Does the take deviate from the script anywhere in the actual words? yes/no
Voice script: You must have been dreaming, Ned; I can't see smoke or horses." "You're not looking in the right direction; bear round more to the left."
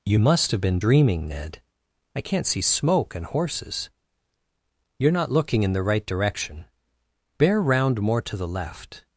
yes